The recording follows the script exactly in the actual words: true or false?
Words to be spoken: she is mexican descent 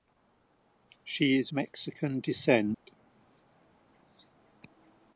true